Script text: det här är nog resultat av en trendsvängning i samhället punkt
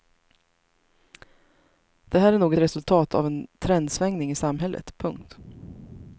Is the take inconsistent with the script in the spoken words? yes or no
no